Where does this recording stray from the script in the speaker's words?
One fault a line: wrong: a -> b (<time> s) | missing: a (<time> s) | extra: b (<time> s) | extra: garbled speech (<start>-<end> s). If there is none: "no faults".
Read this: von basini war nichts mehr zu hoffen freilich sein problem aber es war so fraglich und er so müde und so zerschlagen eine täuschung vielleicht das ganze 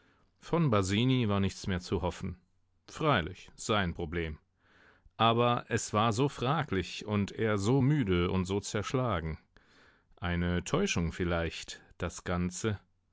no faults